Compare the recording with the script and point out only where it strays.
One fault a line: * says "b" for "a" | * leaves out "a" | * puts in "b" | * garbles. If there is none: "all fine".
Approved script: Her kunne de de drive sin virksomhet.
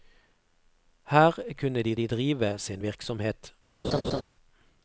all fine